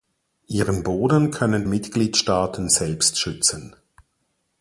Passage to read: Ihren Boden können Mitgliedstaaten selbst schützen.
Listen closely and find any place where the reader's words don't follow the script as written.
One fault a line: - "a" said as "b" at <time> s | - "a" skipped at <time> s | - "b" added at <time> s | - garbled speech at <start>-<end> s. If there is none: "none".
none